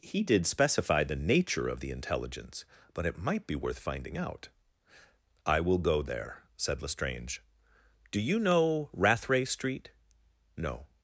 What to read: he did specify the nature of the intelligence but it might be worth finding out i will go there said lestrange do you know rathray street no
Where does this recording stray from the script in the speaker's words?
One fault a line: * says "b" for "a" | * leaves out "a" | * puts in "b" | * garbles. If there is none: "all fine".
all fine